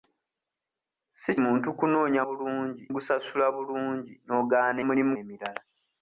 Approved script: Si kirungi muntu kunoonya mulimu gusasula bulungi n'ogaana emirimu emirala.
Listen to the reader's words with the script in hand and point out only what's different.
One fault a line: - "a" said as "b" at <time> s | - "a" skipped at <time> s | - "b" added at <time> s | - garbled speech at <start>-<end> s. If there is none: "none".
- "kirungi" skipped at 1.3 s
- "mulimu" said as "bulungi" at 2.3 s
- "emirimu" said as "mulimu" at 4.9 s